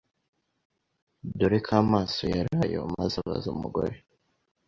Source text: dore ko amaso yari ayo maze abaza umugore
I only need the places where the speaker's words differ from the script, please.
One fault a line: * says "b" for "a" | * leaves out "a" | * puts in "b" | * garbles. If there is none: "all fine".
all fine